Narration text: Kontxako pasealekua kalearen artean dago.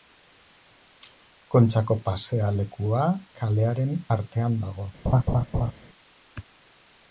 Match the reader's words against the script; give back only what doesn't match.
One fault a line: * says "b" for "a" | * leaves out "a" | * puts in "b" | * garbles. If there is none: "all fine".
all fine